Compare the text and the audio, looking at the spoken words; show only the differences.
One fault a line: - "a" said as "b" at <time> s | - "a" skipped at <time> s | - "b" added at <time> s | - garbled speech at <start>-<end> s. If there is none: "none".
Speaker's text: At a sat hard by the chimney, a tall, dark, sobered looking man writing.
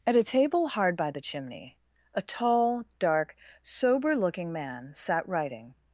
- "sat" said as "table" at 0.2 s
- "sobered" said as "sober" at 3.6 s
- "sat" added at 4.9 s